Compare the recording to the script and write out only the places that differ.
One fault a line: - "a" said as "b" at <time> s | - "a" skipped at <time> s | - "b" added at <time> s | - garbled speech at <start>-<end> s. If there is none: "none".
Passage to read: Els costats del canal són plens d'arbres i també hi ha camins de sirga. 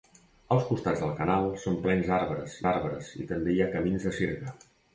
- "d'arbres" added at 2.6 s